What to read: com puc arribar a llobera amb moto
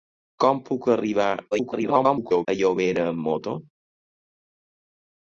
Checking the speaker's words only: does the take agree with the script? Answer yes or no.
no